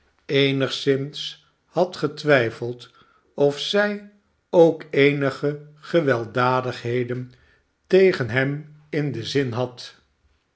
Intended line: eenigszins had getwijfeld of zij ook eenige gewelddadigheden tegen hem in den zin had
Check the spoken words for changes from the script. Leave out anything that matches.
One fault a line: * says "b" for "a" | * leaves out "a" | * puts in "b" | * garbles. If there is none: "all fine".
all fine